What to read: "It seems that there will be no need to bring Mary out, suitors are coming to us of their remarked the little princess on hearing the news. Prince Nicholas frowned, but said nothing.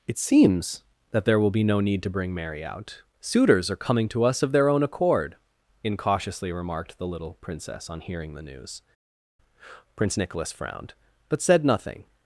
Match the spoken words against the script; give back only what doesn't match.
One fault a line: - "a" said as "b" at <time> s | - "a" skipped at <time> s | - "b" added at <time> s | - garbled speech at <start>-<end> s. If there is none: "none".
- "own accord incautiously" added at 4.7 s